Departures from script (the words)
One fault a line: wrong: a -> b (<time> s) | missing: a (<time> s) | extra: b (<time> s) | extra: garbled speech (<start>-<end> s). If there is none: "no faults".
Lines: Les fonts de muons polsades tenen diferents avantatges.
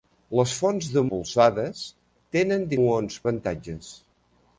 missing: muons (1.0 s)
wrong: diferents -> muons (2.8 s)